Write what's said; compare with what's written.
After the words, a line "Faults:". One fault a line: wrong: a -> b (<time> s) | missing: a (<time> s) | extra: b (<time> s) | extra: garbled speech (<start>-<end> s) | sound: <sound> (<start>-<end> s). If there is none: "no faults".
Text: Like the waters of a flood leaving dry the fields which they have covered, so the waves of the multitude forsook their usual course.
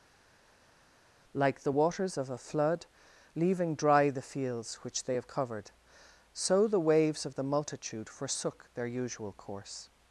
Like the waters of a flood leaving dry the fields which they have covered, so the waves of the multitude forsook their usual course.
Faults:
no faults